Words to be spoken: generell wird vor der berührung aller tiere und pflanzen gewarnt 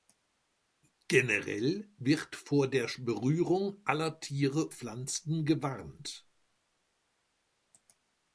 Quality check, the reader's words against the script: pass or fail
fail